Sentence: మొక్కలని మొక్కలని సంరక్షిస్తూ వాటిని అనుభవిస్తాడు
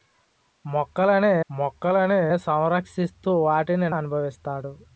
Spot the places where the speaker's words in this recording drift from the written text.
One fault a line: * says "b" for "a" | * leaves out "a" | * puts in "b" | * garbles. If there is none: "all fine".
all fine